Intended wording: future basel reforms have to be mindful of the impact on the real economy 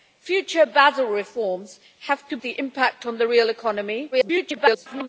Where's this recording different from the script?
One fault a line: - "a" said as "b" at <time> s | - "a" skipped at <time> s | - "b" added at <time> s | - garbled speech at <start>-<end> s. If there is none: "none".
- "be mindful of" skipped at 2.4 s
- garbled speech at 4.1-5.1 s